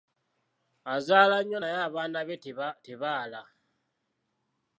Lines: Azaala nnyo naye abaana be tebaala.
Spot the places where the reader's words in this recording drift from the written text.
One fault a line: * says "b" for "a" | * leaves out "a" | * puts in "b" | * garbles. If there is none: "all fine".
all fine